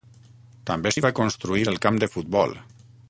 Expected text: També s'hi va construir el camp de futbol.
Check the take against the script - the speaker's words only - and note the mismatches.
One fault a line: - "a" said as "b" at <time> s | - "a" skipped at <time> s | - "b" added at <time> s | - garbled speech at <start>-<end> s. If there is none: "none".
none